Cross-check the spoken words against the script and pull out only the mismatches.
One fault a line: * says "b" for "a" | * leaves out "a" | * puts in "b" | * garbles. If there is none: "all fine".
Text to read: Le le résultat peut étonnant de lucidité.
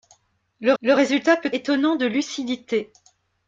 all fine